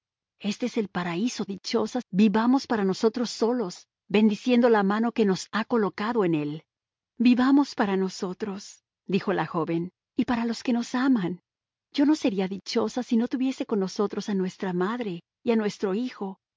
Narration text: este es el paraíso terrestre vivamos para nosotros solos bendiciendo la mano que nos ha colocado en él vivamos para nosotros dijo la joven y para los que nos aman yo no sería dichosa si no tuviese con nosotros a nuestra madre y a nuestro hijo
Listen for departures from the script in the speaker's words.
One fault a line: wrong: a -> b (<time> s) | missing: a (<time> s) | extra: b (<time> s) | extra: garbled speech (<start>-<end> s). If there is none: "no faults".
wrong: terrestre -> dichosa (1.5 s)